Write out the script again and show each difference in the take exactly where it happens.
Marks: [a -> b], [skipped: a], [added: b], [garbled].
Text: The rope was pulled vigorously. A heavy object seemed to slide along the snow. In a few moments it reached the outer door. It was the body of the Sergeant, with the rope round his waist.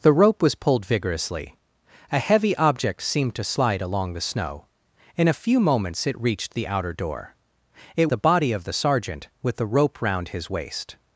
The rope was pulled vigorously. A heavy object seemed to slide along the snow. In a few moments it reached the outer door. It [skipped: was] the body of the Sergeant, with the rope round his waist.